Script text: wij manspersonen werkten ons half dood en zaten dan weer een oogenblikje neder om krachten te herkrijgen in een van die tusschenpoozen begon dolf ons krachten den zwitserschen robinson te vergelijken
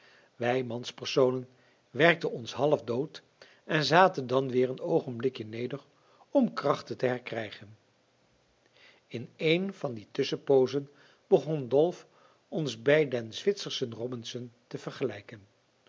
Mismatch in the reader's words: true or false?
true